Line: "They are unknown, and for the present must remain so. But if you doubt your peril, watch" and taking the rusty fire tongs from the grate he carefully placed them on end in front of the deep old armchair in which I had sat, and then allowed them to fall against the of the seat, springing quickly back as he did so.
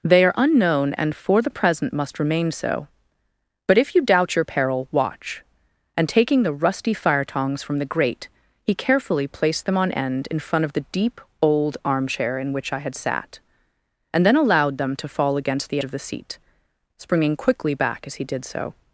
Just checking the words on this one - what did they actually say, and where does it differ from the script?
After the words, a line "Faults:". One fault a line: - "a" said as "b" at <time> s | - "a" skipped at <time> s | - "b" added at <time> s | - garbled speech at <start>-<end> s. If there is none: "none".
"They are unknown, and for the present must remain so. But if you doubt your peril, watch" and taking the rusty fire tongs from the grate he carefully placed them on end in front of the deep old armchair in which I had sat, and then allowed them to fall against the of the seat, springing quickly back as he did so.
Faults:
none